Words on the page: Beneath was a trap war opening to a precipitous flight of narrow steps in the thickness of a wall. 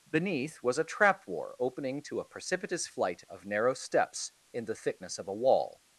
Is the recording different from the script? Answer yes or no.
no